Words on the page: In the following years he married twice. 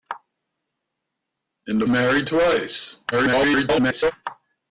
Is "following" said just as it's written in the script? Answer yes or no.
no